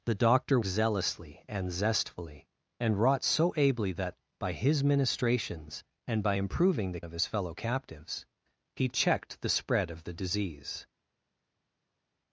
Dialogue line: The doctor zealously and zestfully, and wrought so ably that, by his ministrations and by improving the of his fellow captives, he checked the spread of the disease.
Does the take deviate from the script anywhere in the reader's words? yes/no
no